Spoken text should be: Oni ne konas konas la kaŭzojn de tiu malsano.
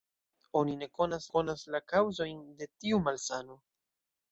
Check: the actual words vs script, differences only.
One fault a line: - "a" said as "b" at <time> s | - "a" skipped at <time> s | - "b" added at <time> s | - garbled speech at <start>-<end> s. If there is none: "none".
none